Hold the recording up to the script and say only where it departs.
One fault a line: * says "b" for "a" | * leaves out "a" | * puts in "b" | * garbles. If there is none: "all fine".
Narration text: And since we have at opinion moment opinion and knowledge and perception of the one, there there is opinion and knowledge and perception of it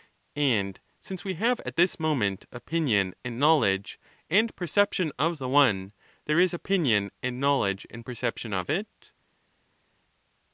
* says "this" for "opinion"
* leaves out "there"